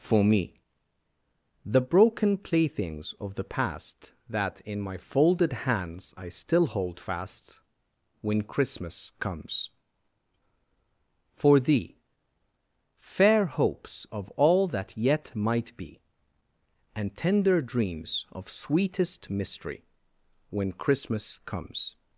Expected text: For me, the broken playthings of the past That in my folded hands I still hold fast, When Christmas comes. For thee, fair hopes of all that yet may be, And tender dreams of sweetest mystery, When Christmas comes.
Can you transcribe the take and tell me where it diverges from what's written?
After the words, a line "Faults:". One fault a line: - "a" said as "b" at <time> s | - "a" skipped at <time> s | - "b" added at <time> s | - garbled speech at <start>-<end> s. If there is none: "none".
For me, the broken playthings of the past That in my folded hands I still hold fast, When Christmas comes. For thee, fair hopes of all that yet might be, And tender dreams of sweetest mystery, When Christmas comes.
Faults:
- "may" said as "might" at 15.3 s